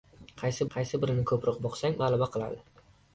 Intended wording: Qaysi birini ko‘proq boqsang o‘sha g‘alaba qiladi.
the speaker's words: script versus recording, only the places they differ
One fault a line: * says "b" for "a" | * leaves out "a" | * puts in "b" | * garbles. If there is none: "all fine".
* puts in "qaysi"
* leaves out "o‘sha"